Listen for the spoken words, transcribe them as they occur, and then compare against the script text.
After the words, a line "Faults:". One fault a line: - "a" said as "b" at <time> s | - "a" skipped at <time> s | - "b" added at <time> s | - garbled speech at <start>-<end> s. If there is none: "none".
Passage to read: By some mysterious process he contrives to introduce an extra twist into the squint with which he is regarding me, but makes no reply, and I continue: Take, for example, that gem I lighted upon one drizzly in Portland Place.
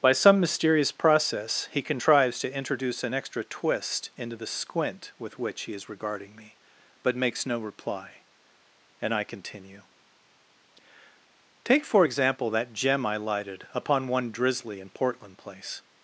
By some mysterious process he contrives to introduce an extra twist into the squint with which he is regarding me, but makes no reply, and I continue: Take, for example, that gem I lighted upon one drizzly in Portland Place.
Faults:
none